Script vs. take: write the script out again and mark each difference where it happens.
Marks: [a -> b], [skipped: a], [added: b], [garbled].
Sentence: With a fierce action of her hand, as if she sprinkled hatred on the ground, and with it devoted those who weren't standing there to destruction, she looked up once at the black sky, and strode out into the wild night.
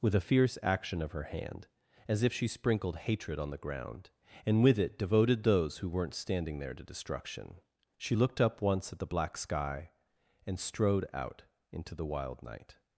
With a fierce action of her hand, as if she sprinkled hatred on the ground, and with it devoted those who weren't standing there to destruction, she looked up once at the black sky, and strode out into the wild night.